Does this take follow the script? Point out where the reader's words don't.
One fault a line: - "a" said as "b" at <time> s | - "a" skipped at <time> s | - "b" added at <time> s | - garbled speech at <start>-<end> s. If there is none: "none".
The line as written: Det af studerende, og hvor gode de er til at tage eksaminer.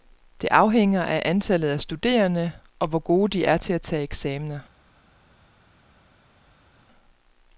- "afhænger af antallet" added at 0.5 s